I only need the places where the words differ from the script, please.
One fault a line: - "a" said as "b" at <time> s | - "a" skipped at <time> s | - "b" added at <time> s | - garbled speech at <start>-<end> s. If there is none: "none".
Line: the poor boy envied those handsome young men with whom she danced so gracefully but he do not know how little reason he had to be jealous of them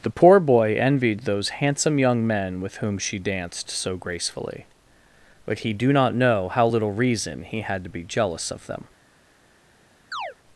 none